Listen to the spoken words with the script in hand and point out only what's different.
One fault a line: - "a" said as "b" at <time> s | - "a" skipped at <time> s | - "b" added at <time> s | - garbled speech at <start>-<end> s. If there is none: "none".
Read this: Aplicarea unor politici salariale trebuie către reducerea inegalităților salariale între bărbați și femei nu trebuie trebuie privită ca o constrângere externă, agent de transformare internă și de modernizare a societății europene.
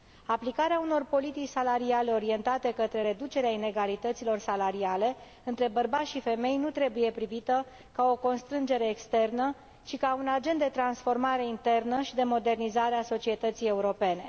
- "trebuie" said as "orientate" at 2.1 s
- "trebuie" skipped at 7.1 s
- "ci ca un" added at 9.8 s